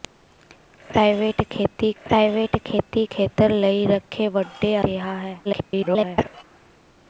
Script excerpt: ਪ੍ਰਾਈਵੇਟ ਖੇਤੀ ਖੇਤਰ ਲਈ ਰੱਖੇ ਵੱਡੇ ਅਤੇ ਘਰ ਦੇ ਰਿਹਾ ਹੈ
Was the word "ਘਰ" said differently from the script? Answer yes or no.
yes